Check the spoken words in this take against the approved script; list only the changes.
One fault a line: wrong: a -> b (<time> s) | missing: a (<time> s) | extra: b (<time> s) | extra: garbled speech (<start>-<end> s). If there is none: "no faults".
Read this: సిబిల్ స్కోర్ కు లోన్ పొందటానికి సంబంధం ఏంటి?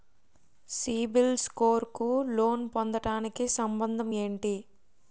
no faults